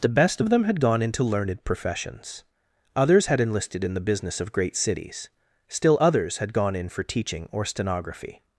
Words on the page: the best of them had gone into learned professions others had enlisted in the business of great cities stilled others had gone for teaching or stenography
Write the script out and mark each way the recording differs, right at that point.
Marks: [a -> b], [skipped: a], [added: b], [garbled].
the best of them had gone into learned professions others had enlisted in the business of great cities [stilled -> still] others had gone [added: in] for teaching or stenography